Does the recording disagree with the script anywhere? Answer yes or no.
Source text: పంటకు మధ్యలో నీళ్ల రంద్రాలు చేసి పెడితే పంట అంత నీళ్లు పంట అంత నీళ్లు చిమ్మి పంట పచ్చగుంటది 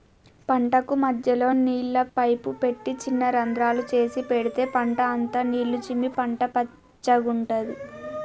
yes